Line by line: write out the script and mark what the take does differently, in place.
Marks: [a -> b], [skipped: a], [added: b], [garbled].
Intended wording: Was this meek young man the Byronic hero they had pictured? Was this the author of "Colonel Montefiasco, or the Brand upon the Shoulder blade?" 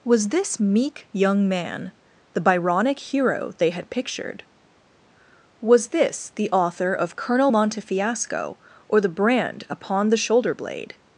Was this meek young man the Byronic hero they had pictured? Was this the author of "Colonel Montefiasco, or the Brand upon the Shoulder blade?"